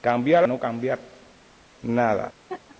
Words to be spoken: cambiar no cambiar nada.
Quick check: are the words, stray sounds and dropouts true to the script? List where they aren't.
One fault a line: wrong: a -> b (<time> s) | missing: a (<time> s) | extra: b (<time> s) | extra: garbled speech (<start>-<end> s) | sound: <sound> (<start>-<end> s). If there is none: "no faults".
sound: laugh (2.5-2.8 s)